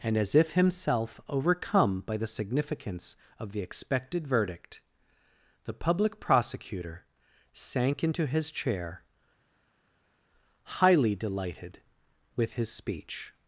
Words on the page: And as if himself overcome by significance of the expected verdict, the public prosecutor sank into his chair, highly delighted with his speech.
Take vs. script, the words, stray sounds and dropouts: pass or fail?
fail